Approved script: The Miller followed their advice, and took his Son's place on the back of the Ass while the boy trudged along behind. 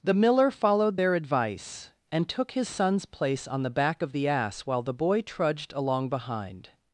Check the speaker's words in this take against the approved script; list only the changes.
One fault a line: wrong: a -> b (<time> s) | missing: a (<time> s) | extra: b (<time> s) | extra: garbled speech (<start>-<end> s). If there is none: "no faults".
no faults